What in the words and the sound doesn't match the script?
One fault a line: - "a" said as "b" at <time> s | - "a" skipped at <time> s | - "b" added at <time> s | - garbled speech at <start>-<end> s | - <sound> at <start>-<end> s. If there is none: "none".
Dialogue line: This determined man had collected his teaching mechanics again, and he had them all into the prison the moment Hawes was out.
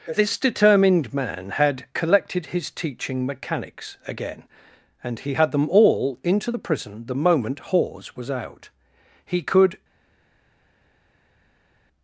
- "He could" added at 9.2 s